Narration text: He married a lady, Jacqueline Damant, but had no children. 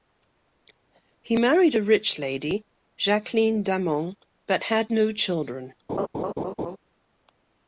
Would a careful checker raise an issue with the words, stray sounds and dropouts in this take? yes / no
yes